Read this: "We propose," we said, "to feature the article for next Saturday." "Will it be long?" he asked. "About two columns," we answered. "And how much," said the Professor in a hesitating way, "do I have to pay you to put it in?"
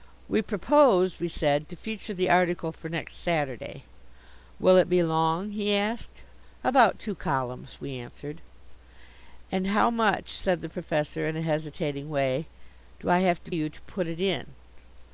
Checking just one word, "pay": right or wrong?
wrong